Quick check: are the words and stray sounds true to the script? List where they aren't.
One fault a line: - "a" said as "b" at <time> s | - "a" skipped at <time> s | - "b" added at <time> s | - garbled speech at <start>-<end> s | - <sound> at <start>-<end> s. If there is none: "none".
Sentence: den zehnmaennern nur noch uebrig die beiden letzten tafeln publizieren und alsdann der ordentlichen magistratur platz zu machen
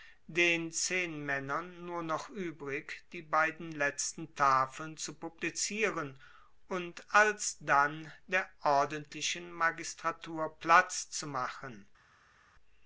- "zu" added at 5.0 s